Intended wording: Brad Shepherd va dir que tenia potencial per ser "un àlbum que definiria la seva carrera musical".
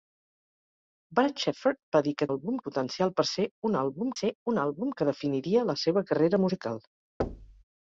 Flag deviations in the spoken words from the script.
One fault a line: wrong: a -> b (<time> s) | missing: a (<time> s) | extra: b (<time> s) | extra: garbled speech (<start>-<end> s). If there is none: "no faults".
wrong: tenia -> àlbum (2.3 s)
extra: ser un àlbum (4.2 s)